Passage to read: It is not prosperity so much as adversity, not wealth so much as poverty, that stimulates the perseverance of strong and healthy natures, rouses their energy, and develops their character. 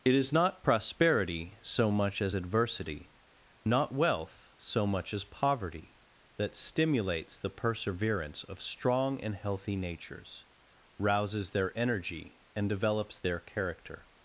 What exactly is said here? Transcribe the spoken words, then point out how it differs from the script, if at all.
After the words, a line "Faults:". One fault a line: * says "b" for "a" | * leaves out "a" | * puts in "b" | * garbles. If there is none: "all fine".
It is not prosperity so much as adversity, not wealth so much as poverty, that stimulates the perseverance of strong and healthy natures, rouses their energy, and develops their character.
Faults:
all fine